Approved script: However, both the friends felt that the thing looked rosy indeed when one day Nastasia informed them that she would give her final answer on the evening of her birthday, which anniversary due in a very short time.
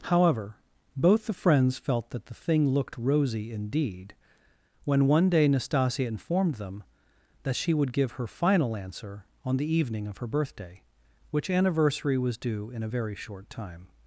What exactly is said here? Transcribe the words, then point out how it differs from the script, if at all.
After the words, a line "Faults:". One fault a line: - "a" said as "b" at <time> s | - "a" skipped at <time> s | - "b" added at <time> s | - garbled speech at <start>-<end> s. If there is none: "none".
However, both the friends felt that the thing looked rosy indeed when one day Nastasia informed them that she would give her final answer on the evening of her birthday, which anniversary was due in a very short time.
Faults:
- "was" added at 12.2 s